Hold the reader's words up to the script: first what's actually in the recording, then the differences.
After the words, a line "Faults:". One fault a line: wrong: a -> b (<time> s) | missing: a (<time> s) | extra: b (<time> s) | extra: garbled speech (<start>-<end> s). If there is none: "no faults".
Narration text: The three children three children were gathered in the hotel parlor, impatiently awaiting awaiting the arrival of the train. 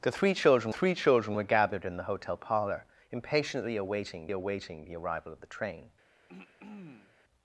The three children three children were gathered in the hotel parlor, impatiently awaiting awaiting the arrival of the train.
Faults:
no faults